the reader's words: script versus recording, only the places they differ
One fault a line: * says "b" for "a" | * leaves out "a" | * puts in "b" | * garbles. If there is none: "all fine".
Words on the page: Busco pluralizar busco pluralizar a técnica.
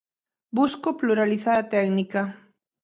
* leaves out "busco pluralizar"